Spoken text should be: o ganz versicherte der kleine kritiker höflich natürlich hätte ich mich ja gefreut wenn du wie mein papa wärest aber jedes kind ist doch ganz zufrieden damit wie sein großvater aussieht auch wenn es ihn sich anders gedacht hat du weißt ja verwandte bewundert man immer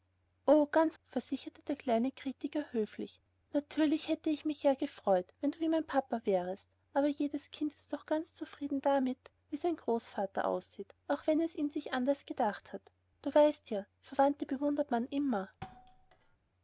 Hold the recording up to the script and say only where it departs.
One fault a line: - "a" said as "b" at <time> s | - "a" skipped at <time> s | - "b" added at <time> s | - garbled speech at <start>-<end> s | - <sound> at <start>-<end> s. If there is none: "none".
- thud at 15.6-16.4 s